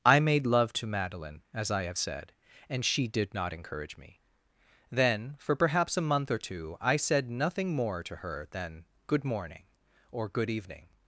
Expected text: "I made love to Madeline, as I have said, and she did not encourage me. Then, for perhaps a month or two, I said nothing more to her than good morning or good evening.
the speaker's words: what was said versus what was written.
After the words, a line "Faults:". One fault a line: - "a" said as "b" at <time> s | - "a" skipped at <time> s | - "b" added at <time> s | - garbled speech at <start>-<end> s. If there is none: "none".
"I made love to Madeline, as I have said, and she did not encourage me. Then, for perhaps a month or two, I said nothing more to her than good morning or good evening.
Faults:
none